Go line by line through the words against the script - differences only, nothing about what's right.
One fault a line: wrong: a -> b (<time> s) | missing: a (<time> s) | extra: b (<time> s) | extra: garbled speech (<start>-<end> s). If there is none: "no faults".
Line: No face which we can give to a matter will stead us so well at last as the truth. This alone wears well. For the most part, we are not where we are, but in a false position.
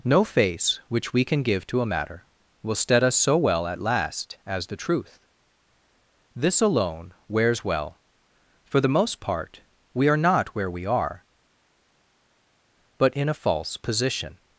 no faults